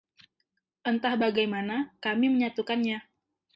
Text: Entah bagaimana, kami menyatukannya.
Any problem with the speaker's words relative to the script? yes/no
no